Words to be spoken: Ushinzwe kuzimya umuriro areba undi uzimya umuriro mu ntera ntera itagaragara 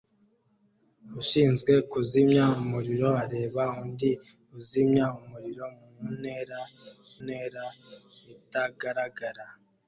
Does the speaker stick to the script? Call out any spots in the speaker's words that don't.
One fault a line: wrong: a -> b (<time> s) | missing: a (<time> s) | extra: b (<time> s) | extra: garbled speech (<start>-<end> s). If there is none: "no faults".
no faults